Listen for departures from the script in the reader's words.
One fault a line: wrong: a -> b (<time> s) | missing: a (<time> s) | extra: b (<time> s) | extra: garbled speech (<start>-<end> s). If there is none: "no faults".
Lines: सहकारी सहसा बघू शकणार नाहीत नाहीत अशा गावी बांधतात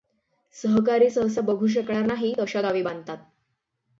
missing: नाहीत (2.4 s)